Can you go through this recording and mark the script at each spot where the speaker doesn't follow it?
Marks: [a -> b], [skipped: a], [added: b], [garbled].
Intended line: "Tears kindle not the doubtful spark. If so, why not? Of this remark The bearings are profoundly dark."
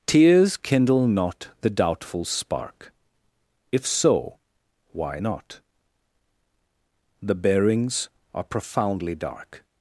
"Tears kindle not the doubtful spark. If so, why not? [skipped: Of this remark] The bearings are profoundly dark."